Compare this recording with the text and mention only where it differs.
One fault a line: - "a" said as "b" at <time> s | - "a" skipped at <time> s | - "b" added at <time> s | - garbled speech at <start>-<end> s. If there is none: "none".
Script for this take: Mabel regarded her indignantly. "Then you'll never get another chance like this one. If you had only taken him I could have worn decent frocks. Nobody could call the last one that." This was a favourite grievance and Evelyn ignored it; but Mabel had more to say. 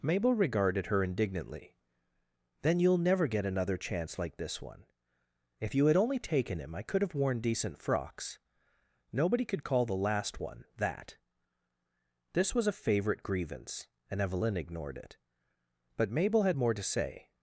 none